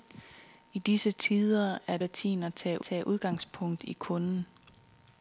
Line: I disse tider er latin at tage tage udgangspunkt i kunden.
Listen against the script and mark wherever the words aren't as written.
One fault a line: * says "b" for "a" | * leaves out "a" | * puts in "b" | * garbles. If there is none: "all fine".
all fine